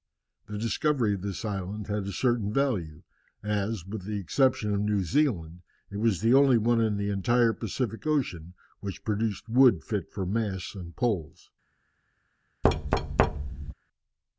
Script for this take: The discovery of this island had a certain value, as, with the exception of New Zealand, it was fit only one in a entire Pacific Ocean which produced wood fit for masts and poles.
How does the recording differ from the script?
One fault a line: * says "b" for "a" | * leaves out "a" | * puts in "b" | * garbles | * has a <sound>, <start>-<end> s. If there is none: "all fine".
* says "the" for "fit"
* says "the" for "a"
* has a thud, 12.6-13.7 s